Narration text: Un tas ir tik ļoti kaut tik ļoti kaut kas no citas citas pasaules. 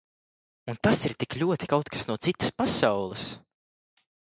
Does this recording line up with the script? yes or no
no